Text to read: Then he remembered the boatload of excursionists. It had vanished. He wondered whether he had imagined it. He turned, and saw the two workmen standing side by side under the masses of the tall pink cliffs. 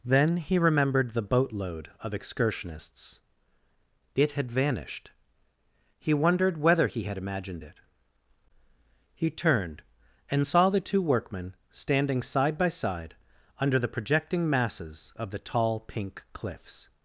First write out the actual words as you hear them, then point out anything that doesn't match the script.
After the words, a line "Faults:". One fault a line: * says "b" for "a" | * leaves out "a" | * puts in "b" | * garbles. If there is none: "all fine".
Then he remembered the boatload of excursionists. It had vanished. He wondered whether he had imagined it. He turned, and saw the two workmen standing side by side under the projecting masses of the tall pink cliffs.
Faults:
* puts in "projecting"